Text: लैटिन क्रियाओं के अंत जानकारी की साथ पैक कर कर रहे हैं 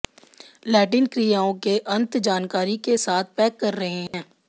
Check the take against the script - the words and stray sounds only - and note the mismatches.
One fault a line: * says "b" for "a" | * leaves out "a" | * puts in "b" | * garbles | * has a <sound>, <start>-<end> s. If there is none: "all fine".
* says "के" for "की"
* leaves out "कर"
* has a dropout, 4.1-4.1 s